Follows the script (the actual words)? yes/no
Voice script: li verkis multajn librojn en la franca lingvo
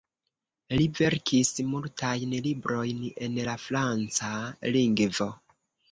yes